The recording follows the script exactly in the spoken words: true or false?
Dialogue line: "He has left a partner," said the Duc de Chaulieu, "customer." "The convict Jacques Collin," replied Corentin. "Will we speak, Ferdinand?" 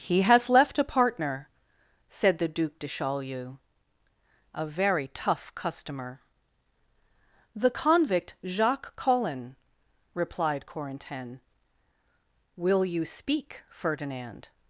false